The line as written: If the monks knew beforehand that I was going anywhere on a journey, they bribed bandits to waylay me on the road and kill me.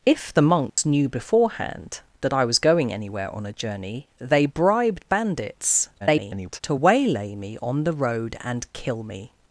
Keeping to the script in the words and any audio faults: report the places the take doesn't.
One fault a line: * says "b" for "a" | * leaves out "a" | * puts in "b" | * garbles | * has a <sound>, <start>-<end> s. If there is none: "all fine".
* has a dropout, 0.7-0.8 s
* garbles